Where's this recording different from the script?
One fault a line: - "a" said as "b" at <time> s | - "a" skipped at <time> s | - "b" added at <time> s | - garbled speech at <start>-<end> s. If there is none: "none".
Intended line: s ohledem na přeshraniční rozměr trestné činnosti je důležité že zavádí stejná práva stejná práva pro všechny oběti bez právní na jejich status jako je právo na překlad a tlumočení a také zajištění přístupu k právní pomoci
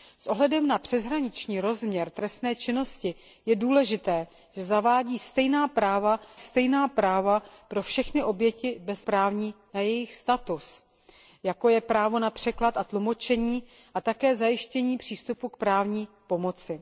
none